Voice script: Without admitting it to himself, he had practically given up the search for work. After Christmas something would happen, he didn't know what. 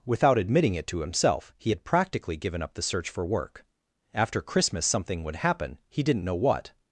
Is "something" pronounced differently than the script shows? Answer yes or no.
no